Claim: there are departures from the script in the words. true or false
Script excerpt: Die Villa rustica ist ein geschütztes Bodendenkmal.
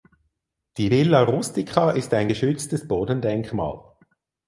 false